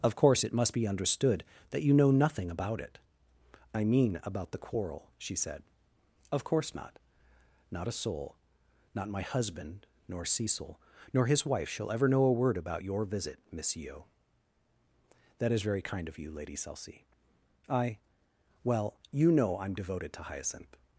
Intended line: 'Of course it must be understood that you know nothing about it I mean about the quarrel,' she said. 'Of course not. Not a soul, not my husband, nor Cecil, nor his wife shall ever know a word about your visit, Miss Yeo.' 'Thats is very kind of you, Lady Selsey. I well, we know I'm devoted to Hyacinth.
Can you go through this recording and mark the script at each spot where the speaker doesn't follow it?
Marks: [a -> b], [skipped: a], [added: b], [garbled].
'Of course it must be understood that you know nothing about it I mean about the quarrel,' she said. 'Of course not. Not a soul, not my husband, nor Cecil, nor his wife shall ever know a word about your visit, Miss Yeo.' ['Thats -> That] is very kind of you, Lady Selsey. I well, [we -> you] know I'm devoted to Hyacinth.